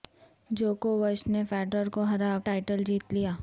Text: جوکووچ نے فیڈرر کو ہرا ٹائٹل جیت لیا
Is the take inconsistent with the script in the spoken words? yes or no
no